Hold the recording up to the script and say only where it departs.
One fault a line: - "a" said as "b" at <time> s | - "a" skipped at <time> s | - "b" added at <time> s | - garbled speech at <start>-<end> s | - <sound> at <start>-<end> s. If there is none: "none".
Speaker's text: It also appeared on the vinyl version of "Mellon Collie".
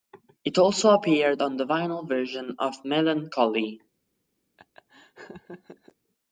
- laugh at 4.6-6.0 s